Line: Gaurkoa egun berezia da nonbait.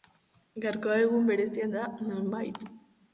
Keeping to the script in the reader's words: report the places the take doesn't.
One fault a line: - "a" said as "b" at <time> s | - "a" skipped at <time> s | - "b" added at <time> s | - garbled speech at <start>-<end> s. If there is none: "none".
none